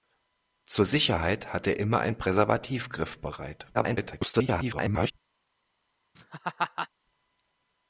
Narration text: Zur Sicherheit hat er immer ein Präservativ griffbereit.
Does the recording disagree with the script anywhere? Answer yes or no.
yes